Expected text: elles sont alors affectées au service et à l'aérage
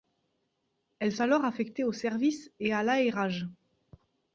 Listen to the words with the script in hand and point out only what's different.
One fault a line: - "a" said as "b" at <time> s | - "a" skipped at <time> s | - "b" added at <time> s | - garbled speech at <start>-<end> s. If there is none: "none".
- "sont" skipped at 1.1 s